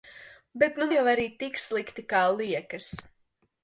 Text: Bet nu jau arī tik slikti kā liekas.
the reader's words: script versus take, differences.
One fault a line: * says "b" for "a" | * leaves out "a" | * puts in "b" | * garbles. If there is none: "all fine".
all fine